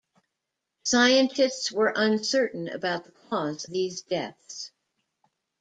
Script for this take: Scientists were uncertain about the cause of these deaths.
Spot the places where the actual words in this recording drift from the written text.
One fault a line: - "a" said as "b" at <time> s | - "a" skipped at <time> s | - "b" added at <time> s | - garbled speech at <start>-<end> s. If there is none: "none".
- "of" skipped at 3.7 s